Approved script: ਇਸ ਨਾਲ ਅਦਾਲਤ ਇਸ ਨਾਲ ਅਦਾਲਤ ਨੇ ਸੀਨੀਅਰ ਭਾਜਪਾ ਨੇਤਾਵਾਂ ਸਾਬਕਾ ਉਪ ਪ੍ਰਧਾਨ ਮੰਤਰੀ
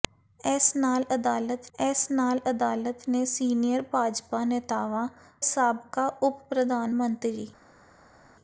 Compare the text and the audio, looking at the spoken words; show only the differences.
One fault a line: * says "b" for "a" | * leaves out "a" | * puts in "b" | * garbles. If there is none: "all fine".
all fine